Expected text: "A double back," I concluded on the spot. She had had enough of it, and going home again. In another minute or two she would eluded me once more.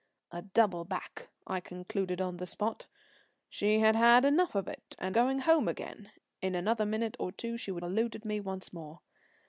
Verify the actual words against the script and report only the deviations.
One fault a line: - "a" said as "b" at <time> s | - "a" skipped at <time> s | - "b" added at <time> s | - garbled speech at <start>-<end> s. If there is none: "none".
none